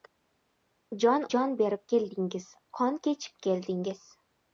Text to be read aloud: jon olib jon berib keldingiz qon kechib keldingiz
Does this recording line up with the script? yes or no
no